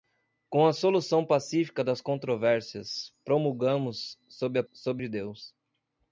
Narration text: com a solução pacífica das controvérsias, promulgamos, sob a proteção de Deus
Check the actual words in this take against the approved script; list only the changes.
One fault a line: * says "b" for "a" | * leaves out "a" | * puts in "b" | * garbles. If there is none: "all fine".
* says "sob" for "proteção"